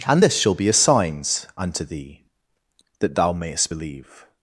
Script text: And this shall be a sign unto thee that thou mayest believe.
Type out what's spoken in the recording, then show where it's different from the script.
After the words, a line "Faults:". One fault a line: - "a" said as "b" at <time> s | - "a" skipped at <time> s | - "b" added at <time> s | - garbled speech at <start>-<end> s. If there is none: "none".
And this shall be a signs unto thee that thou mayest believe.
Faults:
- "sign" said as "signs" at 0.7 s